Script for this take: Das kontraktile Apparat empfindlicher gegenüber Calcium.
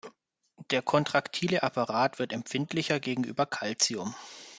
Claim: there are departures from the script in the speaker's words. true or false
true